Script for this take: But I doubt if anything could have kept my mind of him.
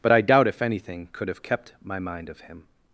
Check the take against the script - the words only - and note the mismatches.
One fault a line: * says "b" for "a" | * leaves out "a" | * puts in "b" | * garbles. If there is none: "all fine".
all fine